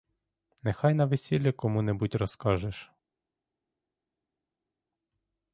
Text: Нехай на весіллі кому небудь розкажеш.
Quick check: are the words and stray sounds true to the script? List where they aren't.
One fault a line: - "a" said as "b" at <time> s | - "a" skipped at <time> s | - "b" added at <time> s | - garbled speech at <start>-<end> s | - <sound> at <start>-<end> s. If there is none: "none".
none